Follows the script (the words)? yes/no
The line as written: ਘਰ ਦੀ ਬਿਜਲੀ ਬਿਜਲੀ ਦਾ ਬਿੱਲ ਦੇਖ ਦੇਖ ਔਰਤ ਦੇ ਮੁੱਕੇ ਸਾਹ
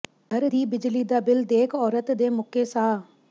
no